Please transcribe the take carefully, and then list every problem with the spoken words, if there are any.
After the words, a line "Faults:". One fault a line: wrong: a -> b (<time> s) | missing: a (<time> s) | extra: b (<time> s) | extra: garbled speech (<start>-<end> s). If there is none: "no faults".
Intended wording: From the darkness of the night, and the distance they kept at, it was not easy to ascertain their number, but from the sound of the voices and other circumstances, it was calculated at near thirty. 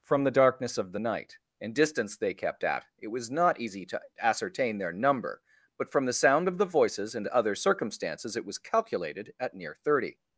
From the darkness of the night, and distance they kept at, it was not easy to ascertain their number, but from the sound of the voices and other circumstances, it was calculated at near thirty.
Faults:
missing: the (1.7 s)